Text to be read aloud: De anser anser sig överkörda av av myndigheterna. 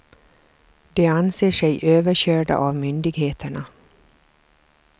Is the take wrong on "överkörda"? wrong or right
right